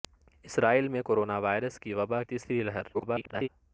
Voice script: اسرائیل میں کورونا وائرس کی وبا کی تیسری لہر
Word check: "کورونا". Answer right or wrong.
right